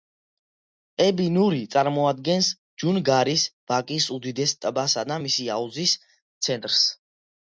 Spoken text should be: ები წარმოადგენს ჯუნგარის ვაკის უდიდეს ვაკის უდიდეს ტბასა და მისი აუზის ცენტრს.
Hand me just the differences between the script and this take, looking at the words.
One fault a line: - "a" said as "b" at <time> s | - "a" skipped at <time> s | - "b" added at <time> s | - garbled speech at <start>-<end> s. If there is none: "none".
- "ნური" added at 1.3 s
- "ვაკის უდიდეს" skipped at 4.5 s